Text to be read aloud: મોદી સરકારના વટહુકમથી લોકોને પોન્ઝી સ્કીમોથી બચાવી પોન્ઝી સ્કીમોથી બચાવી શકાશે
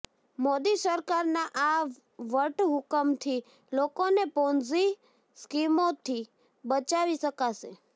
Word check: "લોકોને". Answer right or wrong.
right